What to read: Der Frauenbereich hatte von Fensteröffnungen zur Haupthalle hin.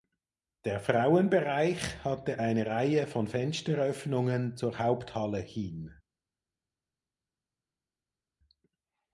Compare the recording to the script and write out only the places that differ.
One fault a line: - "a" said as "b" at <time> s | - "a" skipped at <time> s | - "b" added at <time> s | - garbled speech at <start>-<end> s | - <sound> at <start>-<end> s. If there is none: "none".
- "eine Reihe" added at 2.4 s